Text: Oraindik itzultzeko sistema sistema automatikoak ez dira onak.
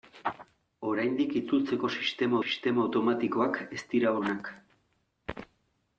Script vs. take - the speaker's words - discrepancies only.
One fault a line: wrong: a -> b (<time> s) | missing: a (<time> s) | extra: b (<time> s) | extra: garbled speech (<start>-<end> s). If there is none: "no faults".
no faults